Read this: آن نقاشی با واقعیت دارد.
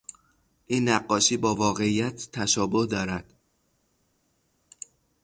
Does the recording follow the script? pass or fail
fail